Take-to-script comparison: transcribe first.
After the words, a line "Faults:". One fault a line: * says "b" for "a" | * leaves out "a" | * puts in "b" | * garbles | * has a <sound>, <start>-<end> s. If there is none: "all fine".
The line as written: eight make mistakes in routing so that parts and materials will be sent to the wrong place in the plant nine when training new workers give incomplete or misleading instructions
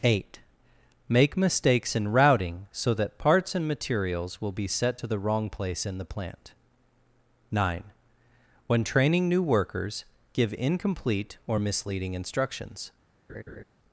eight make mistakes in routing so that parts and materials will be set to the wrong place in the plant nine when training new workers give incomplete or misleading instructions
Faults:
* says "set" for "sent"
* has a laugh, 13.3-13.6 s